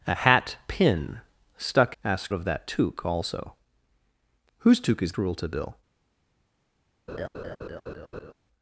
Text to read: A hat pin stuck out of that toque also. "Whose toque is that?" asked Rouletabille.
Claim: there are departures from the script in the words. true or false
true